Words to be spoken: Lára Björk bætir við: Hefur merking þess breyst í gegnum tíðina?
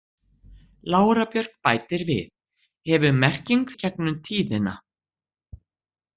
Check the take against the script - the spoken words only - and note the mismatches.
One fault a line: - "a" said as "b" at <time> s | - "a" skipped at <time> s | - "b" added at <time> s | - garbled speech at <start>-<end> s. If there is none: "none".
- "þess breyst" skipped at 3.7 s